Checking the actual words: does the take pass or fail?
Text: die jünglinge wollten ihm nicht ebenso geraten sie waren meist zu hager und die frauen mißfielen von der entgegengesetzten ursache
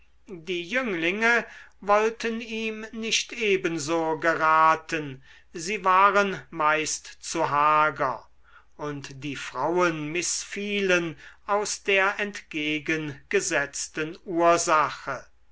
fail